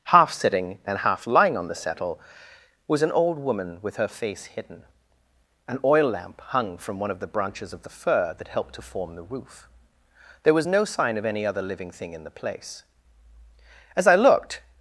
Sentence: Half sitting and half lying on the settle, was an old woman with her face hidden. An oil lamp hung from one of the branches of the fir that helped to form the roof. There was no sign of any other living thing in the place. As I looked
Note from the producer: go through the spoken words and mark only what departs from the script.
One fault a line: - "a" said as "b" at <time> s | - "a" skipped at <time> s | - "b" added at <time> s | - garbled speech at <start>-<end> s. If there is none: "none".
none